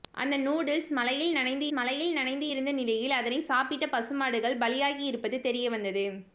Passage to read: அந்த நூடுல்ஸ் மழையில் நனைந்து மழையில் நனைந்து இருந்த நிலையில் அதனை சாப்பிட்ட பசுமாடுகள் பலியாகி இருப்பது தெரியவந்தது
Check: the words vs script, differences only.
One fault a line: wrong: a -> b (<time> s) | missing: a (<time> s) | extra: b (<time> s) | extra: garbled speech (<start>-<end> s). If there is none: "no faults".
no faults